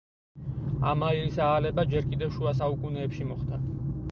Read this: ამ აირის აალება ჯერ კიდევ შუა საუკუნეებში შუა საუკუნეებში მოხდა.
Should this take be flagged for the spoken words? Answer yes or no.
yes